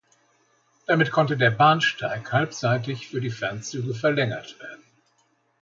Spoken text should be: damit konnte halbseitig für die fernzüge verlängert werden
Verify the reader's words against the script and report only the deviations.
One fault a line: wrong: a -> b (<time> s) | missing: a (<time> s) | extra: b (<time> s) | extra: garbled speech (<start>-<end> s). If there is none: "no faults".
extra: der bahnsteig (1.4 s)